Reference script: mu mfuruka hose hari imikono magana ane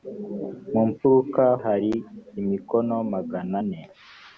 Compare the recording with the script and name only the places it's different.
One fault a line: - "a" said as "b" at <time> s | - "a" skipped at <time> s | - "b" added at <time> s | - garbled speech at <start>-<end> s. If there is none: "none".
- "hose" skipped at 1.4 s